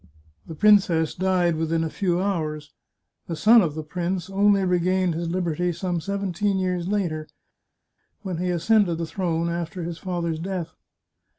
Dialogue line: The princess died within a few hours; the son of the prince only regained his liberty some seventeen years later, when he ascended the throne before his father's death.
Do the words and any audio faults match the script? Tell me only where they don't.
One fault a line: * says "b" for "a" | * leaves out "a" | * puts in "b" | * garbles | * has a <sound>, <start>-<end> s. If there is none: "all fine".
* says "after" for "before"